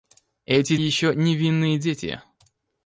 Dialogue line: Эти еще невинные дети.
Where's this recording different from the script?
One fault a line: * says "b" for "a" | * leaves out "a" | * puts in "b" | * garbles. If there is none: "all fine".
all fine